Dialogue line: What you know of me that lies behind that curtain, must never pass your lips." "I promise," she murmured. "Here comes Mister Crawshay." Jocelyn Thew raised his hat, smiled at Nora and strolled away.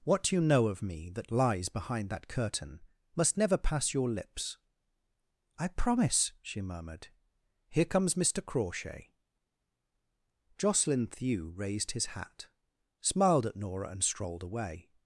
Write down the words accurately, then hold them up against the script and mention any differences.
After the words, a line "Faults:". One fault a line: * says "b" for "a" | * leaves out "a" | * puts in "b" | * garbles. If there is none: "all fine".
What you know of me that lies behind that curtain, must never pass your lips." "I promise," she murmured. "Here comes Mister Crawshay." Jocelyn Thew raised his hat, smiled at Nora and strolled away.
Faults:
all fine